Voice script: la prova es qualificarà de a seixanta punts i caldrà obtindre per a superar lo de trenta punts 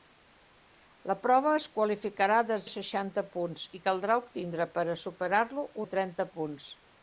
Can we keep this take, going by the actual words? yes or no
yes